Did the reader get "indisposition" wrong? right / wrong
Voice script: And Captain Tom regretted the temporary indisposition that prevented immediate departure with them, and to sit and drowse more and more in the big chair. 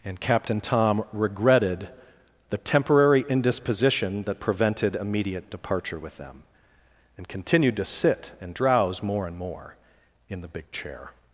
right